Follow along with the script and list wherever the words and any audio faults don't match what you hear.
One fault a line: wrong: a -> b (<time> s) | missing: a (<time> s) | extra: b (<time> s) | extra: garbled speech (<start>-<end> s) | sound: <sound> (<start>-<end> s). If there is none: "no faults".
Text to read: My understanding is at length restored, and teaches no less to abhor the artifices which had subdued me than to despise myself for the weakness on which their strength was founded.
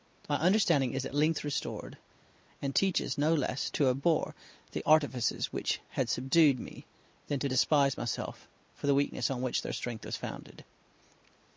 no faults